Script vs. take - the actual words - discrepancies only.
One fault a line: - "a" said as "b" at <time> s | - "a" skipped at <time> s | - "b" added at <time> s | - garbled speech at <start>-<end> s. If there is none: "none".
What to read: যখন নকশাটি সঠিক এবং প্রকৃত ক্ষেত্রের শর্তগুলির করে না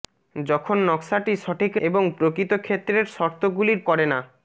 none